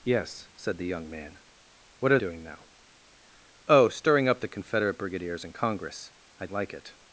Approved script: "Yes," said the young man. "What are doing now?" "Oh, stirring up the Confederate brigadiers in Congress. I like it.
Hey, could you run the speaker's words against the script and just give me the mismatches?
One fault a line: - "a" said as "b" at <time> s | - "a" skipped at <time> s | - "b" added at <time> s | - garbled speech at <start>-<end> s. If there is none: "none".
none